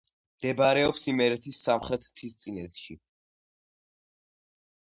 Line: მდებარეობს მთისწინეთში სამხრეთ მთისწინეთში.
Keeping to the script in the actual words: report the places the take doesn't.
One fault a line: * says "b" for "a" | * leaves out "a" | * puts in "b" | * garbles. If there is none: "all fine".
* says "იმერეთის" for "მთისწინეთში"